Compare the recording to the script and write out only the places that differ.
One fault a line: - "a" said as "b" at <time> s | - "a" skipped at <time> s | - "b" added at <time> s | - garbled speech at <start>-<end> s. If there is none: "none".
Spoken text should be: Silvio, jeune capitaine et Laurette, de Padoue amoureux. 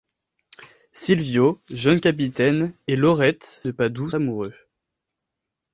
none